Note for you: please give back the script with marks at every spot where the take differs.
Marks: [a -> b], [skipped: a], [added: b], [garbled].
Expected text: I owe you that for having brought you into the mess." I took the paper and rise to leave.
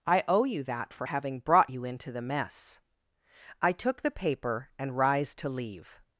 I owe you that for having brought you into the mess." I took the paper and rise to leave.